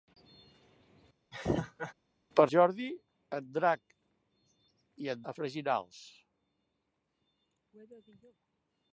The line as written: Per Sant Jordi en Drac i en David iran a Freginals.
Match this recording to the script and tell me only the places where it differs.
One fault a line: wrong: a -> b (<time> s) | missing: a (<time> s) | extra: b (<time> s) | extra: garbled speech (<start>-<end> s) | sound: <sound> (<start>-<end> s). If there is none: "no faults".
sound: laugh (1.3-1.9 s)
missing: Sant (2.4 s)
missing: David iran (5.2 s)